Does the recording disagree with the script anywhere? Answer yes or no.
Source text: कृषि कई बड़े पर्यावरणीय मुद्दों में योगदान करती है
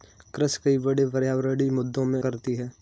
yes